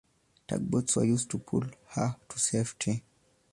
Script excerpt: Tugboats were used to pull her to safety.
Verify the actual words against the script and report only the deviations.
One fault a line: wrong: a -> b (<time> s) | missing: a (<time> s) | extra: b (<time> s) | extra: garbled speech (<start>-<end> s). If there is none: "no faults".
no faults